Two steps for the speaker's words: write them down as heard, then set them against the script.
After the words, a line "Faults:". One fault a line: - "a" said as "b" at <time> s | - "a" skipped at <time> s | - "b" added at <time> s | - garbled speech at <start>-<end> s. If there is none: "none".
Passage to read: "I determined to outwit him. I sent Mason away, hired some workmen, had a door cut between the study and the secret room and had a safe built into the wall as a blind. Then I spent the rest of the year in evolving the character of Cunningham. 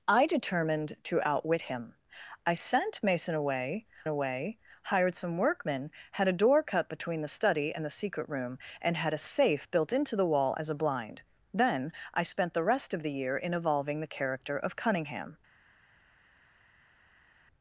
"I determined to outwit him. I sent Mason away away, hired some workmen, had a door cut between the study and the secret room and had a safe built into the wall as a blind. Then I spent the rest of the year in evolving the character of Cunningham.
Faults:
- "away" added at 4.1 s